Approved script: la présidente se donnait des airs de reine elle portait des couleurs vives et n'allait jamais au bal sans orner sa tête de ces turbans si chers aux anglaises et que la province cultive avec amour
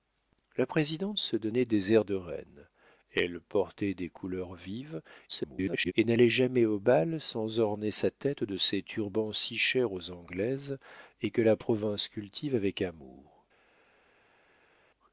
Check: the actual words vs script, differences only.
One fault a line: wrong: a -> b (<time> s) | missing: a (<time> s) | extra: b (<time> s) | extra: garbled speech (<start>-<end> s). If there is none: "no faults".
extra: garbled speech (5.3-5.9 s)